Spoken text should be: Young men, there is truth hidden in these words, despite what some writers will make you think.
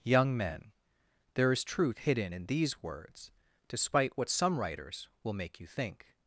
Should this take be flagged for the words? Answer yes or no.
no